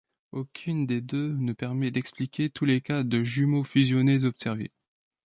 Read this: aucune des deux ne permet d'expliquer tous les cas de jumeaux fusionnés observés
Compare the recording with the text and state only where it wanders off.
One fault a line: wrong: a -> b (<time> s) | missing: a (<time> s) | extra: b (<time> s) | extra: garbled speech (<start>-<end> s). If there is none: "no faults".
no faults